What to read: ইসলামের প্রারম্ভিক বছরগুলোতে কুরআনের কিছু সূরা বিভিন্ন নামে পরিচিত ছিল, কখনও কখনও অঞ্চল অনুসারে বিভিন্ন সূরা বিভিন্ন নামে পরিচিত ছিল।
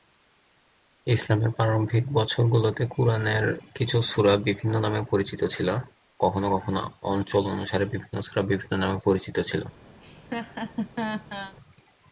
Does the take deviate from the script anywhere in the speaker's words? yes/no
no